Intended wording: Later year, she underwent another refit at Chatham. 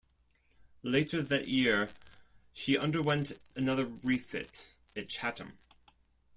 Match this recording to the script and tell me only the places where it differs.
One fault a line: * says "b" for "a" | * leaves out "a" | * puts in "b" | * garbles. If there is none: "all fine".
* puts in "that"